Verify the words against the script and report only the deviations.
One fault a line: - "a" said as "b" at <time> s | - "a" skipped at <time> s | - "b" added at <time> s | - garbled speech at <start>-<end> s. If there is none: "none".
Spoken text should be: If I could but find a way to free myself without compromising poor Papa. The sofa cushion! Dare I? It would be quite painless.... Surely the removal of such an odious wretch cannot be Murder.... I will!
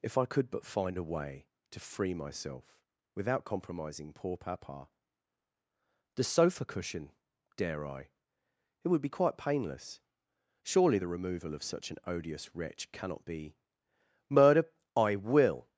none